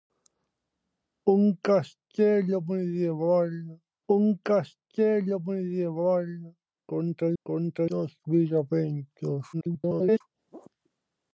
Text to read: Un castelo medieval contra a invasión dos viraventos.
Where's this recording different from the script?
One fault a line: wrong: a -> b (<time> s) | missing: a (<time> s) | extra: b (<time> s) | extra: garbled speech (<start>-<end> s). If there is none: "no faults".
extra: un castelo medieval (4.1 s)
wrong: invasión -> contra (7.4 s)
extra: garbled speech (9.5-10.2 s)